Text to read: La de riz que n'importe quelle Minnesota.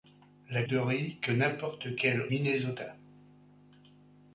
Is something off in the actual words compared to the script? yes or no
no